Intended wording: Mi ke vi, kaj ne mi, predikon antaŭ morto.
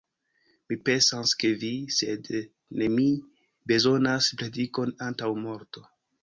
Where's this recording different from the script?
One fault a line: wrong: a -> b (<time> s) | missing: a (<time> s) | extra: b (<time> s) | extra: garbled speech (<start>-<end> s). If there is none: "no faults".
extra: pensas (0.9 s)
wrong: kaj -> sed (2.0 s)
extra: bezonas (3.7 s)